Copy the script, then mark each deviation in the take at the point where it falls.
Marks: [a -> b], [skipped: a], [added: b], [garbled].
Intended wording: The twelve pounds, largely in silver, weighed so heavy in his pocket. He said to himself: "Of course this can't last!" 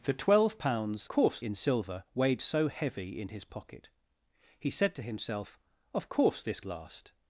The twelve pounds, [largely -> course] in silver, weighed so heavy in his pocket. He said to himself: "Of course this [skipped: can't] last!"